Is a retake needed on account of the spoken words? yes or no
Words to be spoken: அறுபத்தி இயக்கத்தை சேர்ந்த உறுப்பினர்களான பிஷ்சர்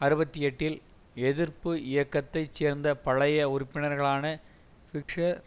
yes